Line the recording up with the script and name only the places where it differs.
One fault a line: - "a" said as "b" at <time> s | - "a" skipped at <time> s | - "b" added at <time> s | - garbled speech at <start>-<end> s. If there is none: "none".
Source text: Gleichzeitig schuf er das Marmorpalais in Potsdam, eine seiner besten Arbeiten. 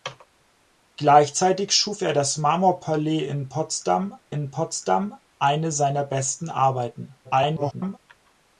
- "in Potsdam" added at 4.3 s
- garbled speech at 7.2-8.0 s